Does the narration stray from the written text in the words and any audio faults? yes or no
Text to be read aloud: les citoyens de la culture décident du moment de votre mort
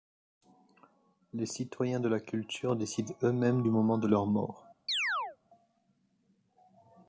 yes